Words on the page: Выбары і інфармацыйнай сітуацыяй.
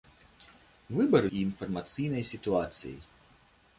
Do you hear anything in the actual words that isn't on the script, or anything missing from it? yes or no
no